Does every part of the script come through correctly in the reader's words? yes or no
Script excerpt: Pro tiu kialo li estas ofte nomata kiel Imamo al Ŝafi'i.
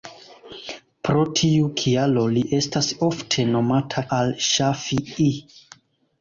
no